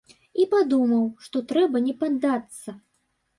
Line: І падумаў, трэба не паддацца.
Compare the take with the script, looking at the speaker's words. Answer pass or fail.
fail